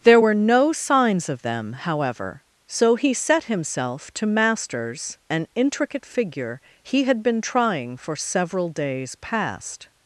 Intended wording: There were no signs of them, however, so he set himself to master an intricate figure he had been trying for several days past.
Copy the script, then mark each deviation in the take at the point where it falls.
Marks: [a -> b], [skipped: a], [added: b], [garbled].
There were no signs of them, however, so he set himself to [master -> masters] an intricate figure he had been trying for several days past.